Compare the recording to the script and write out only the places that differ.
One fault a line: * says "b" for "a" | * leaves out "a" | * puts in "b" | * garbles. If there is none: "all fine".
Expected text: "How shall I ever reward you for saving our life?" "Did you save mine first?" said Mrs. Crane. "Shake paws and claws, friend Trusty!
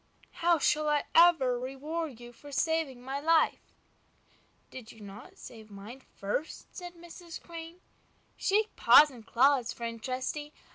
* says "my" for "our"
* puts in "not"